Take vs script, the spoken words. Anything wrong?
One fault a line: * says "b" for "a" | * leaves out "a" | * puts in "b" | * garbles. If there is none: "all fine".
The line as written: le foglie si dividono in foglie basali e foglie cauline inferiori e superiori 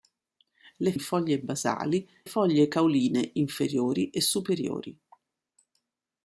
* leaves out "foglie si dividono"
* leaves out "e"